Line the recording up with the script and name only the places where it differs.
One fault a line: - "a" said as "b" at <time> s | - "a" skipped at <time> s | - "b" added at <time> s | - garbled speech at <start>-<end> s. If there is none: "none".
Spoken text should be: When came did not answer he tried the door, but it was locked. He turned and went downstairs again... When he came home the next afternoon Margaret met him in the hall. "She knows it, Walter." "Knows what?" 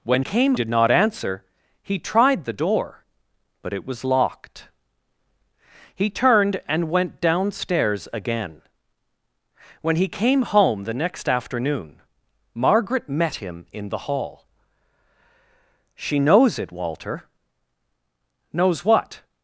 none